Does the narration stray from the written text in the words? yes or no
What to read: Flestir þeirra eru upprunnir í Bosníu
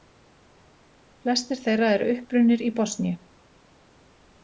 no